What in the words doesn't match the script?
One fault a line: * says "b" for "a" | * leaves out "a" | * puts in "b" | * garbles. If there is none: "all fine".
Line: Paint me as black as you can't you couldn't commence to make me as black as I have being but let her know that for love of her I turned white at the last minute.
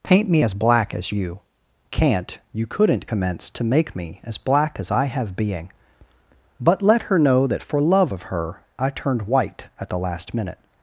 all fine